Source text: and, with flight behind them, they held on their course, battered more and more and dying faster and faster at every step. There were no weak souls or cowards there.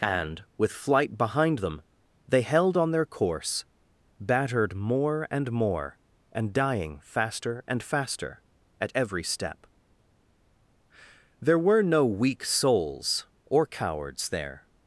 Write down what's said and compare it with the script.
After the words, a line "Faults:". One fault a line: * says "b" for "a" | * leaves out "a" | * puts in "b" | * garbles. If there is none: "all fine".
and, with flight behind them, they held on their course, battered more and more and dying faster and faster at every step. There were no weak souls or cowards there.
Faults:
all fine